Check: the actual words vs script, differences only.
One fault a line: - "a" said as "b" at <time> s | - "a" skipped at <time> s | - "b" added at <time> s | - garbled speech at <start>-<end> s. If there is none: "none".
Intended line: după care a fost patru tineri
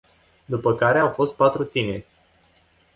- "a" said as "au" at 1.0 s